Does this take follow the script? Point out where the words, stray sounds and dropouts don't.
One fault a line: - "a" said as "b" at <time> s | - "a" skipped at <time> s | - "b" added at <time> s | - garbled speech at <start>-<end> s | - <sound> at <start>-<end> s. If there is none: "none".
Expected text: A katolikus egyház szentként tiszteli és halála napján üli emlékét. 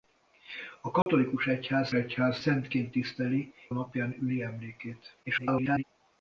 - dropout at 1.0-1.1 s
- "egyház" added at 1.9 s
- "és halála" skipped at 3.5 s
- garbled speech at 5.2-5.8 s